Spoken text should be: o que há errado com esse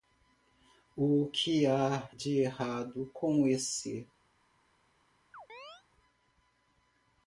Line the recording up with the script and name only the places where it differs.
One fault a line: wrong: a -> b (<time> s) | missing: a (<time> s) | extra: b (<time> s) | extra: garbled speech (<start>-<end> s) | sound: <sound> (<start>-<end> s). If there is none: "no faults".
extra: de (2.1 s)
sound: chirp (5.3-5.8 s)